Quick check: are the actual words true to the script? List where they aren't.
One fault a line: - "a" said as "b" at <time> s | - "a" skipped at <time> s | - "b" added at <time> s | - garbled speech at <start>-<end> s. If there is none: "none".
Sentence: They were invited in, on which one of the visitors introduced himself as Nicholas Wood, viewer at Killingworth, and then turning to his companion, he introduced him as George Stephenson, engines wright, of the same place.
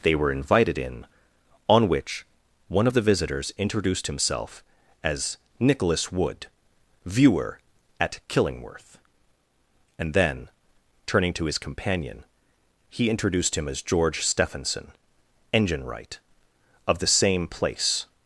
- "engines" said as "engine" at 15.5 s